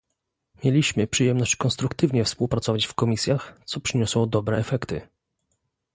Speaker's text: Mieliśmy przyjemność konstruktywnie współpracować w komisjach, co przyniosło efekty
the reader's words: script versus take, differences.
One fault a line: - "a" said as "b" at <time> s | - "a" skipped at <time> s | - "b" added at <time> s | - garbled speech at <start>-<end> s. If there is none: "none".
- "dobre" added at 4.3 s